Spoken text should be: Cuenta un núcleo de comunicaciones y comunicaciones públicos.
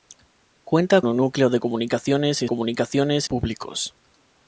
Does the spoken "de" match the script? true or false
true